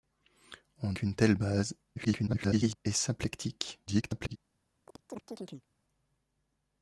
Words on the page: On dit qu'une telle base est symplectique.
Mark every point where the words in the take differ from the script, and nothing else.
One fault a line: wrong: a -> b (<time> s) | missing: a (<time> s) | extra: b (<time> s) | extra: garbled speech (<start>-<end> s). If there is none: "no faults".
missing: dit (0.9 s)
extra: garbled speech (2.0-2.8 s)
extra: garbled speech (3.9-4.4 s)